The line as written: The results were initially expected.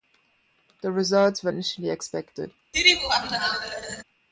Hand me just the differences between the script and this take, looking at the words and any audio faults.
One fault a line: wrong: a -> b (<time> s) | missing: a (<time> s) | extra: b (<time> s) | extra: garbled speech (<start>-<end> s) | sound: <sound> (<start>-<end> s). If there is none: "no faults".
sound: laugh (2.7-4.0 s)